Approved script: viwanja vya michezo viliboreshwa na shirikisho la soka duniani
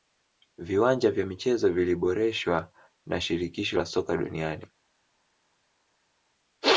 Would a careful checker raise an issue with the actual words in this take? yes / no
no